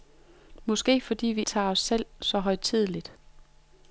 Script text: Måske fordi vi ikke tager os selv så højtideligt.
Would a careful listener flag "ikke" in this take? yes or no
yes